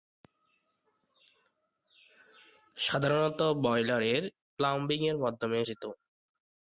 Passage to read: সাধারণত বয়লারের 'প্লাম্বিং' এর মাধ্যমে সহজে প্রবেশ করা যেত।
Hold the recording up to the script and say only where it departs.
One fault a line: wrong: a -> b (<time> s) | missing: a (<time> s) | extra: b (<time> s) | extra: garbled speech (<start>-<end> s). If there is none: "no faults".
missing: সহজে প্রবেশ করা (5.6 s)